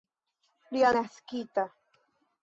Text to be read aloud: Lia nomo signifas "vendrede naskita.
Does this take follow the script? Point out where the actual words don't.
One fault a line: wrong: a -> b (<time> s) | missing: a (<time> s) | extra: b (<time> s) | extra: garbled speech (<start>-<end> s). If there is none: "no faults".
missing: nomo signifas vendrede (0.9 s)